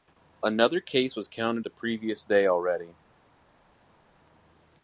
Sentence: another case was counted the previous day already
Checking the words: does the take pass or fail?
pass